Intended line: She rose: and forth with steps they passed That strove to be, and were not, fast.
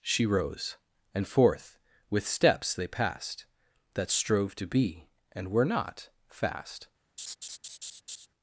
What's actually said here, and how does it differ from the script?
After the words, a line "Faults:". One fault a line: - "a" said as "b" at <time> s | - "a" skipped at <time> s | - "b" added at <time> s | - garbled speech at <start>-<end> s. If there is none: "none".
She rose: and forth with steps they passed That strove to be, and were not, fast.
Faults:
none